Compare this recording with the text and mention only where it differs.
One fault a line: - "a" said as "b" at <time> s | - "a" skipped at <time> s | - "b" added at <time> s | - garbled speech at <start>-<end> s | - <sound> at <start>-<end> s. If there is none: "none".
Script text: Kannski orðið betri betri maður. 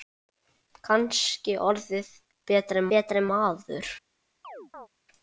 - chirp at 4.4-4.9 s